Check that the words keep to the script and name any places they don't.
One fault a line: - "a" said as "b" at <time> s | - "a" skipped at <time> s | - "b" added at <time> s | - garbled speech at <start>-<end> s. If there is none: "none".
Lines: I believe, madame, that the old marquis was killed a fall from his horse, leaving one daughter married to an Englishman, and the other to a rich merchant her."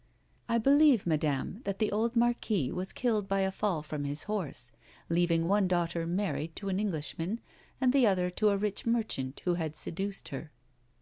- "by" added at 3.3 s
- "who had seduced" added at 9.4 s